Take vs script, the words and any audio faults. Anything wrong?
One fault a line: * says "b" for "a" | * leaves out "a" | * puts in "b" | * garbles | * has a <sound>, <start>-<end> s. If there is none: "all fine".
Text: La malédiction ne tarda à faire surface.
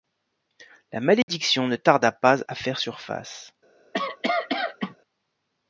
* has a dropout, 1.2-1.3 s
* puts in "pas"
* has a cough, 3.9-5.0 s